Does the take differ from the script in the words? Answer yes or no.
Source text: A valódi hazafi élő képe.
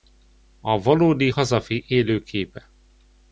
no